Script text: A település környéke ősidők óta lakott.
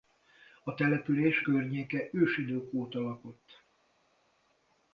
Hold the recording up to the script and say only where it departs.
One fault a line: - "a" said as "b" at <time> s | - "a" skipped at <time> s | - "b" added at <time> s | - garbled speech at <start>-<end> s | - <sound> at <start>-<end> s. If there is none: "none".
none